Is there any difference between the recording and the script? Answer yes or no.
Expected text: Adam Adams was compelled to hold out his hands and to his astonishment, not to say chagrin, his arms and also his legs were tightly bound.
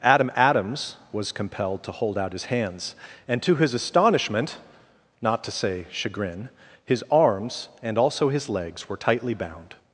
no